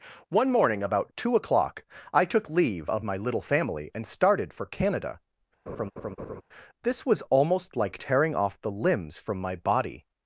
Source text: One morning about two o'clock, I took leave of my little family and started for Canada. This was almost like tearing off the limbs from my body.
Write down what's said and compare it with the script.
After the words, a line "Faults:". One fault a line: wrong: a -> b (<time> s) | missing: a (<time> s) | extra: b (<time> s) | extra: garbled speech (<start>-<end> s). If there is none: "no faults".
One morning about two o'clock, I took leave of my little family and started for Canada. This was almost like tearing off the limbs from my body.
Faults:
no faults